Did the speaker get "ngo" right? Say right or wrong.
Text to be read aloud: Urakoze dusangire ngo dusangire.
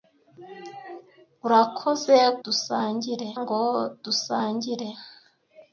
right